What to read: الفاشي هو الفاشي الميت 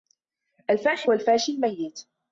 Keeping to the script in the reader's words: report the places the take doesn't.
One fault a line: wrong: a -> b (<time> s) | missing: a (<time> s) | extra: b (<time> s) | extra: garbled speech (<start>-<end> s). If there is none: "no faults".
no faults